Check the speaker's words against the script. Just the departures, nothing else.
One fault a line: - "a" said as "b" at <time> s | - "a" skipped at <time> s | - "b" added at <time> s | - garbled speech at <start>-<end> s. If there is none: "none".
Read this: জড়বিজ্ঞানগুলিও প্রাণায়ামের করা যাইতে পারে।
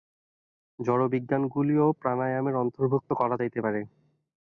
- "অন্তর্ভুক্ত" added at 2.6 s